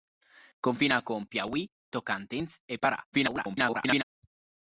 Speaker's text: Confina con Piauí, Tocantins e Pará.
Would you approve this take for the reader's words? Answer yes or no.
no